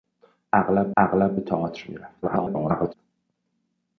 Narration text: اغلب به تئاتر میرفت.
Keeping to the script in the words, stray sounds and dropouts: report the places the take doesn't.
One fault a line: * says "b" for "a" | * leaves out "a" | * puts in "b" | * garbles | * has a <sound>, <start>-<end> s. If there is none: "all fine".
* puts in "اغلب"
* garbles